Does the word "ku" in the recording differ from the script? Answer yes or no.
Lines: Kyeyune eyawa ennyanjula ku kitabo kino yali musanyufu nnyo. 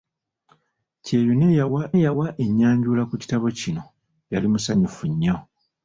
no